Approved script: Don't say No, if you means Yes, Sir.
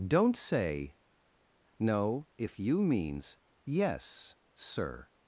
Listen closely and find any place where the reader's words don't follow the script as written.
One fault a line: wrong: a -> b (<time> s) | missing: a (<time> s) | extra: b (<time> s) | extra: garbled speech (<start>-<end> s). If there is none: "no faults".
no faults